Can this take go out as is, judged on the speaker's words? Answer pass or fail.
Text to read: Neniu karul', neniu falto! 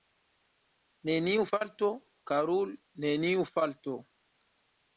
fail